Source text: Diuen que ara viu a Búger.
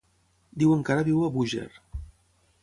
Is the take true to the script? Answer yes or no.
yes